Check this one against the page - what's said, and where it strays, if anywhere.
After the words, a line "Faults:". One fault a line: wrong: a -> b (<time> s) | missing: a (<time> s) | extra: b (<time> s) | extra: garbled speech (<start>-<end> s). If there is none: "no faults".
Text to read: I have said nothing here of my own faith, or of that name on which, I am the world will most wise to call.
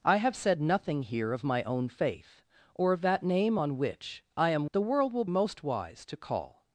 I have said nothing here of my own faith, or of that name on which, I am the world will most wise to call.
Faults:
no faults